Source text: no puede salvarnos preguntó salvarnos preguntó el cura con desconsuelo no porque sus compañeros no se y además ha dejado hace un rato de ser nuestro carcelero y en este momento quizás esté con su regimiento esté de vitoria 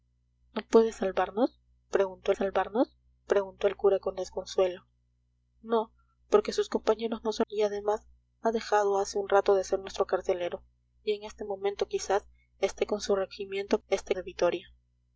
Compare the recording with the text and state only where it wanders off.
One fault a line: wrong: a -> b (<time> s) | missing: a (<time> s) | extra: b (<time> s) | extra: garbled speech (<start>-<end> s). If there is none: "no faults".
no faults